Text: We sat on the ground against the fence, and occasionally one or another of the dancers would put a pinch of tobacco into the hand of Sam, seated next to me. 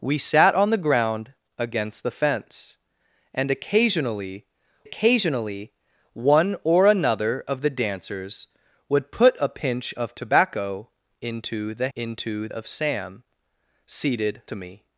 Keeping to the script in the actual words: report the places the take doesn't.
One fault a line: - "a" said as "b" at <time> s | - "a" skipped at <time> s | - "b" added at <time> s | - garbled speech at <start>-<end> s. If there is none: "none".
- "occasionally" added at 4.8 s
- "hand" said as "into" at 12.0 s
- "next" skipped at 14.4 s